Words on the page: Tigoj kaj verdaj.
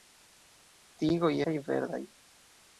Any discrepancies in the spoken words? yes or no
no